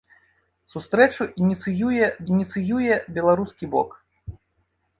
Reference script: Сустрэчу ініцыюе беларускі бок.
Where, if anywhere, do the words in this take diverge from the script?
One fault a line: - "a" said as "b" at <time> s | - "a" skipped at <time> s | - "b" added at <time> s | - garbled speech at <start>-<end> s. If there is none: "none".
- "ініцыюе" added at 2.3 s